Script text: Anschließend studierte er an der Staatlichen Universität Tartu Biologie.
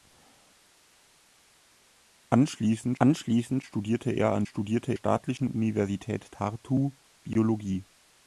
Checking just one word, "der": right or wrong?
wrong